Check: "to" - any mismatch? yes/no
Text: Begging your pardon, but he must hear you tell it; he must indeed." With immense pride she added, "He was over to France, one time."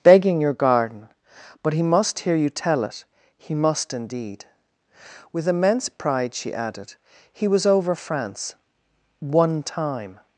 yes